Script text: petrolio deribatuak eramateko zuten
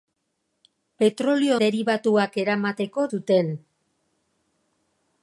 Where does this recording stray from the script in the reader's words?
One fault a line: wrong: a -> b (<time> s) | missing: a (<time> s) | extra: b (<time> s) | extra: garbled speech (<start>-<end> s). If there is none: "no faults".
no faults